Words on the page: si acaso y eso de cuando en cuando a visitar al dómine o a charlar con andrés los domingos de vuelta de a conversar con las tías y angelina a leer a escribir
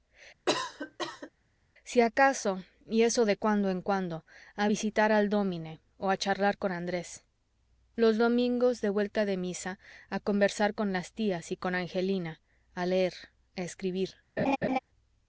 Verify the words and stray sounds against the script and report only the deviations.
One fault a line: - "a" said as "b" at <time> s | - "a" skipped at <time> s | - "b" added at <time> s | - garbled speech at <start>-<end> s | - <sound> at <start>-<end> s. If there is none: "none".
- cough at 0.5-1.3 s
- "misa" added at 9.4 s
- "con" added at 11.6 s
- laugh at 14.4-14.8 s